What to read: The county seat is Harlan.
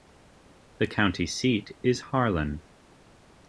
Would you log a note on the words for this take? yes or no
no